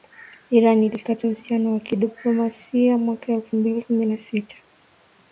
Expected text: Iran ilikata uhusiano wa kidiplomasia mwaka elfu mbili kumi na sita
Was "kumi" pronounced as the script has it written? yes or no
yes